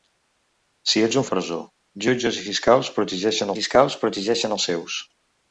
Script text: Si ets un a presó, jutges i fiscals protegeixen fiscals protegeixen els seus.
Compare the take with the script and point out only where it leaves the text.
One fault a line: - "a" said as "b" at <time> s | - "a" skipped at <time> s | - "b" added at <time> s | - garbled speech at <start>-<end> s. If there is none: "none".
none